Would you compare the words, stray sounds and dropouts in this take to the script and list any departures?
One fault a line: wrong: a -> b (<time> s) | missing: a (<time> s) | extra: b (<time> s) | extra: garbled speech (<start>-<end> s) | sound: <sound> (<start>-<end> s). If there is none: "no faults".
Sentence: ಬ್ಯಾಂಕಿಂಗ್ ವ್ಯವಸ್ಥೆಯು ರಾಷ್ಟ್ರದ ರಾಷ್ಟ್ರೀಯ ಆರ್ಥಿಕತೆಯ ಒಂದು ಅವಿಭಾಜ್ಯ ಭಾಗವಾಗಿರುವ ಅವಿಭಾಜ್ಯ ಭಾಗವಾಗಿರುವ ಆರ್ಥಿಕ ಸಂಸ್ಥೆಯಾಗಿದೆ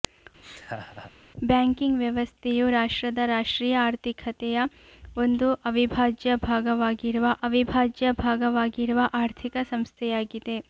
sound: laugh (0.4-1.1 s)